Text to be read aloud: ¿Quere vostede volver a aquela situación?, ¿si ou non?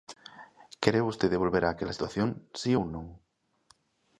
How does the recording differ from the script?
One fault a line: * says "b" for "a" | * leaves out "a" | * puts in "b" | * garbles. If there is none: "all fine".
all fine